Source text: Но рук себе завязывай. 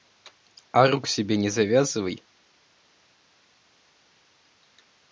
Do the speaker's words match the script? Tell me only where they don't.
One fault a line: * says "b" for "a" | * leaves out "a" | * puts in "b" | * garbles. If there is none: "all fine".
* says "А" for "Но"
* puts in "не"